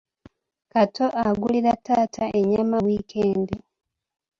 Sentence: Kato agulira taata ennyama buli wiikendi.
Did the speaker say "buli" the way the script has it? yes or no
no